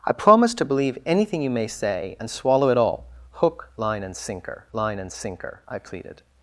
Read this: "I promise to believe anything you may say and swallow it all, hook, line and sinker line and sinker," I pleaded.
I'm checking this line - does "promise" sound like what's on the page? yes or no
yes